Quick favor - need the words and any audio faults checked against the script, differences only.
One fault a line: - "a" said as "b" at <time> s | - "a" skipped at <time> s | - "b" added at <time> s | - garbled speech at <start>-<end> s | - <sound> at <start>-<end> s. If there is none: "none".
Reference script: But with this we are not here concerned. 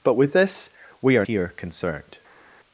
- "not" skipped at 1.3 s